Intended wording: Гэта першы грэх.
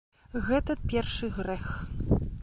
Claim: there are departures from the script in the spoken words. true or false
false